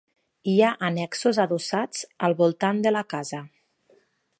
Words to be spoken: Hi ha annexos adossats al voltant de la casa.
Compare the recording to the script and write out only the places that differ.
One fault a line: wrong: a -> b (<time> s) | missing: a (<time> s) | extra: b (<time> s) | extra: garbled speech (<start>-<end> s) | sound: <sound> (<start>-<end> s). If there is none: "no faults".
no faults